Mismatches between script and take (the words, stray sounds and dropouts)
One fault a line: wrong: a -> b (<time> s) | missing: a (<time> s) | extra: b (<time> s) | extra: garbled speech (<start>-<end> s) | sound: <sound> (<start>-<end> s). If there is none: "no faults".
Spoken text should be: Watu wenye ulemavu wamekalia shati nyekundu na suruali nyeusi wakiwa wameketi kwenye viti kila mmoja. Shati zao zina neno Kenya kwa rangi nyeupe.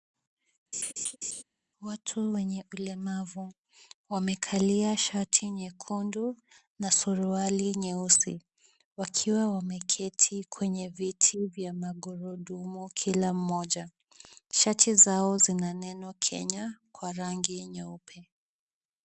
sound: laugh (0.7-1.4 s)
extra: vya magurudumu (11.5 s)